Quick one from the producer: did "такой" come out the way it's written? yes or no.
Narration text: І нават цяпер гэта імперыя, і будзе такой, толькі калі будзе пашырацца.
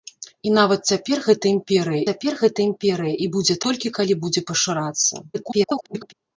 no